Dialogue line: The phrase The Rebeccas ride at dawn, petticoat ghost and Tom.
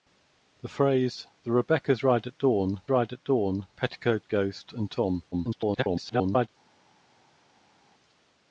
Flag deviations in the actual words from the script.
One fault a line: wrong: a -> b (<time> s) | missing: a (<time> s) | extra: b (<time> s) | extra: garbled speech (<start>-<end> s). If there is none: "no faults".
extra: ride at dawn (2.9 s)
extra: garbled speech (5.3-6.5 s)